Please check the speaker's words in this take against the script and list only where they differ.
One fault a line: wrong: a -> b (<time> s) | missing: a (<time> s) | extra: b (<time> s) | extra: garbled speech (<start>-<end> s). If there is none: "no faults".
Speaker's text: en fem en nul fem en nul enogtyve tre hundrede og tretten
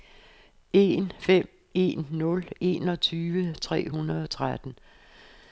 missing: fem en nul (2.5 s)